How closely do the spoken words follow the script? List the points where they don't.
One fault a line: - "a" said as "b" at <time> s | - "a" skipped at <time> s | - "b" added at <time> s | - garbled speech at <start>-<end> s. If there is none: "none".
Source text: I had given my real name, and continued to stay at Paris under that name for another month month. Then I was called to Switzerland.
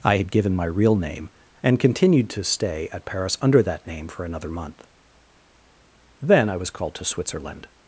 - "month" skipped at 4.9 s